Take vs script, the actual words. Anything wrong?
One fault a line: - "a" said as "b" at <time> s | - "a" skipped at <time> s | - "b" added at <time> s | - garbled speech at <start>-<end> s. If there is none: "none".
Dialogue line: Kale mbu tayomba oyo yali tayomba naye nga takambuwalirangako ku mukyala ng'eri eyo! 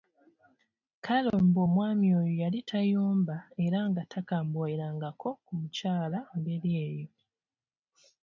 - "tayomba" said as "omwami" at 1.7 s
- "naye" said as "era" at 3.6 s